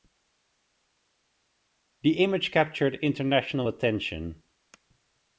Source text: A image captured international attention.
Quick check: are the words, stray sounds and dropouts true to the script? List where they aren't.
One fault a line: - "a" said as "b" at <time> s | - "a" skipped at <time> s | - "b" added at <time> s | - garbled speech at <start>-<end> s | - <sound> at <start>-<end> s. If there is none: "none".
- "A" said as "The" at 2.0 s